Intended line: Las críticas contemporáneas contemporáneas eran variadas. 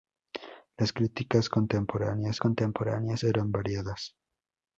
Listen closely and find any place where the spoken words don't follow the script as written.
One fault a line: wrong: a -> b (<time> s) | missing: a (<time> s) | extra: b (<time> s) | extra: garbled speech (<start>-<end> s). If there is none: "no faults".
no faults